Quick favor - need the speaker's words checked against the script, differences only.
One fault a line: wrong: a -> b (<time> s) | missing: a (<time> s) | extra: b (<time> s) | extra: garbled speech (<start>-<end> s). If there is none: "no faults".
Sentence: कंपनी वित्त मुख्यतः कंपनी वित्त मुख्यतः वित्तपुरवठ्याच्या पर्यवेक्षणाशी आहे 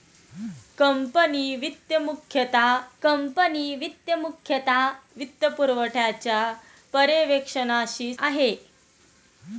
no faults